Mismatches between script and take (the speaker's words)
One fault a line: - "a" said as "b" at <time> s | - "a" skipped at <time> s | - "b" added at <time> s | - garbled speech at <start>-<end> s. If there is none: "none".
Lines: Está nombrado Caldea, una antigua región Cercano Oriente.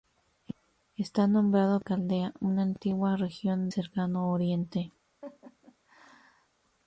none